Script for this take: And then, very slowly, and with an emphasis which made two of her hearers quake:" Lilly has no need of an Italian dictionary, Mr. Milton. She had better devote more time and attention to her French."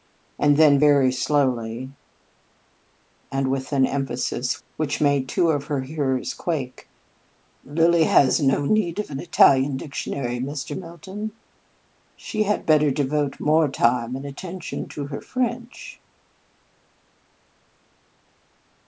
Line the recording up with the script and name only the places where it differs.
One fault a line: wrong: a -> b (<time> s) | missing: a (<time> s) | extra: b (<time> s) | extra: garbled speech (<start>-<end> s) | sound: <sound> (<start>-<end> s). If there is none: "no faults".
no faults